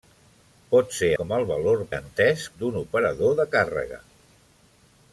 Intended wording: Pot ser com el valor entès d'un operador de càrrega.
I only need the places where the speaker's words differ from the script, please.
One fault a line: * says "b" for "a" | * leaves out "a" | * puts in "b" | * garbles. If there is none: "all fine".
all fine